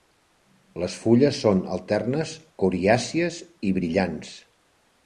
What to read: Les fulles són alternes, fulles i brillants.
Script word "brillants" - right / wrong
right